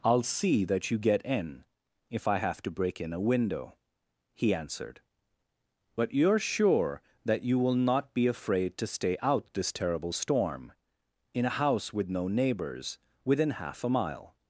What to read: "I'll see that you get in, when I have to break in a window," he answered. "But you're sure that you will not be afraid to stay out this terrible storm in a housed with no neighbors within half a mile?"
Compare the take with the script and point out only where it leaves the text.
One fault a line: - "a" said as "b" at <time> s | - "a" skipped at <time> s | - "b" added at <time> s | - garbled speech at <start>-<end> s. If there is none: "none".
- "when" said as "if" at 2.1 s
- "housed" said as "house" at 11.5 s